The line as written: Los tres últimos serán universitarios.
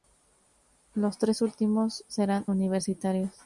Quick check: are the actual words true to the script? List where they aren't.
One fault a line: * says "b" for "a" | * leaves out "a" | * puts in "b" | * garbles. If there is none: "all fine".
all fine